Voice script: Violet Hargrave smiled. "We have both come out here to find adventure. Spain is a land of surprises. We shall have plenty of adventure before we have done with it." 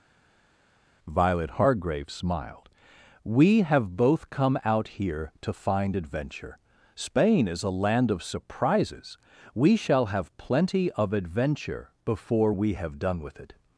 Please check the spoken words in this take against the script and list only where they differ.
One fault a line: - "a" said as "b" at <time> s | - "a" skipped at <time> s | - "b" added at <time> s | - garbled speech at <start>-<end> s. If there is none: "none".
none